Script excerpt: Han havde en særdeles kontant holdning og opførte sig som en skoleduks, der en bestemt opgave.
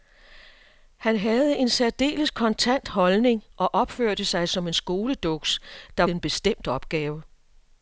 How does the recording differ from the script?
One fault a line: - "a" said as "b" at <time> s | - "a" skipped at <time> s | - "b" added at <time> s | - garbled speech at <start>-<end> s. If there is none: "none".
none